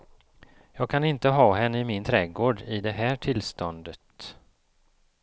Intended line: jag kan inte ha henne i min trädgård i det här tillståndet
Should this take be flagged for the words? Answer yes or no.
no